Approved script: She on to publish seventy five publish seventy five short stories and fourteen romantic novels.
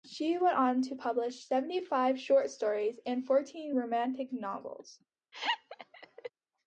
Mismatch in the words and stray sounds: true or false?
true